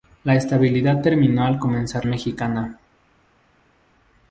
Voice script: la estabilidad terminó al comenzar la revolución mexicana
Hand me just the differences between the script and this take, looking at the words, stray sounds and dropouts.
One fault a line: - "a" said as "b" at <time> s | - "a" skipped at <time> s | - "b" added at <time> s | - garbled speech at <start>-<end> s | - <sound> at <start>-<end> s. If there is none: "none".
- "la revolución" skipped at 2.1 s